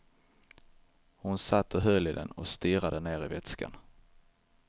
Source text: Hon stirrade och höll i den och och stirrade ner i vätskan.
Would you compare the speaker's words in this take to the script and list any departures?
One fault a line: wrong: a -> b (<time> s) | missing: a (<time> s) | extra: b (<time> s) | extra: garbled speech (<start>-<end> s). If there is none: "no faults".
wrong: stirrade -> satt (1.4 s)
missing: och (2.5 s)